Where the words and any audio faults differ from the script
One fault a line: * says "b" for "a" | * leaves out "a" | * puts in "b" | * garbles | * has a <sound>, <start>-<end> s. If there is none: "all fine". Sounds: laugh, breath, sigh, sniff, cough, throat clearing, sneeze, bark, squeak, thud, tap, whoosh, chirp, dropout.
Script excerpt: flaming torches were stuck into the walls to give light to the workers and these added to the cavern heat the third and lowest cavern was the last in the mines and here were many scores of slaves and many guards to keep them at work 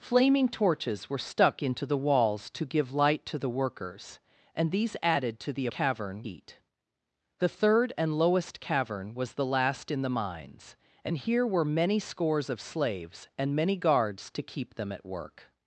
all fine